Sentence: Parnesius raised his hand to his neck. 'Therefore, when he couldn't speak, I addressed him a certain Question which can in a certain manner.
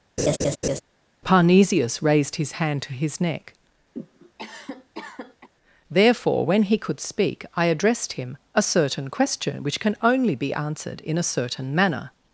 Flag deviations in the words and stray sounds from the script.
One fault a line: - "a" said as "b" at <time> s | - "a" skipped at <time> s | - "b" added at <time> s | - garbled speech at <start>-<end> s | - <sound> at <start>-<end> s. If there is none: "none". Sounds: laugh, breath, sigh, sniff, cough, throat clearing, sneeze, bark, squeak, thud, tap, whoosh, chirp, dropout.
- laugh at 0.2-0.8 s
- cough at 3.9-5.5 s
- "couldn't" said as "could" at 6.8 s
- "only be answered" added at 10.0 s